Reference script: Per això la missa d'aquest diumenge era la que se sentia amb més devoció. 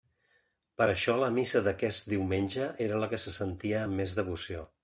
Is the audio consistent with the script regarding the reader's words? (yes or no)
yes